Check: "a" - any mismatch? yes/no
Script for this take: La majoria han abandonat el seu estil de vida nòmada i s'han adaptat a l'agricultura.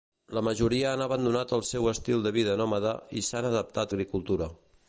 yes